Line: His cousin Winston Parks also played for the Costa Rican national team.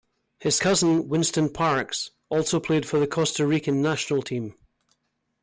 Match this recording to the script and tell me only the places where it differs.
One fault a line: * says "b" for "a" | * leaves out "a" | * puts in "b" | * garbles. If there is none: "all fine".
all fine